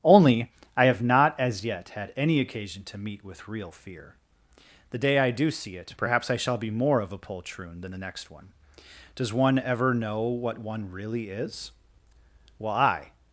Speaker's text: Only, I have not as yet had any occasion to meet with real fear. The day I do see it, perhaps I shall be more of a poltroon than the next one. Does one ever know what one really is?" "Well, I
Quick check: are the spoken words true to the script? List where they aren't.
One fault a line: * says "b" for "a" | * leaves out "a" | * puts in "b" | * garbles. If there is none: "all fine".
all fine